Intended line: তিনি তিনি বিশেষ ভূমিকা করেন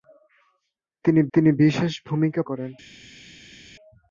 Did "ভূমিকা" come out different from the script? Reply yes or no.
no